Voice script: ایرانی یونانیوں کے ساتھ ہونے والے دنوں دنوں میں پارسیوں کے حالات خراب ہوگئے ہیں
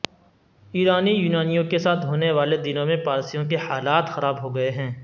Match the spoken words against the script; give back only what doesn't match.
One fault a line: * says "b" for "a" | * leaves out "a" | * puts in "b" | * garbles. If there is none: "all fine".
* leaves out "دنوں"